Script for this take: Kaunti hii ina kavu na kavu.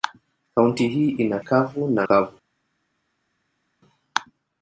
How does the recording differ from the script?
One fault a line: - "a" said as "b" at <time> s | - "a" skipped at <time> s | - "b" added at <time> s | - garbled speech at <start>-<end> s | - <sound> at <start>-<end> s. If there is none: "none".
none